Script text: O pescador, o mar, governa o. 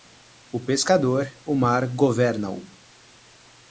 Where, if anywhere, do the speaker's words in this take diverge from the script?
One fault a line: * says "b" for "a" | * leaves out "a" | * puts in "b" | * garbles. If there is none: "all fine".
all fine